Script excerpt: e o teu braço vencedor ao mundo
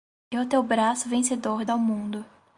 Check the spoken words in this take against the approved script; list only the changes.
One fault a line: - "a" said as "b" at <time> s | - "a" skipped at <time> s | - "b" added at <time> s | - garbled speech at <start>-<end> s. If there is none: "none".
none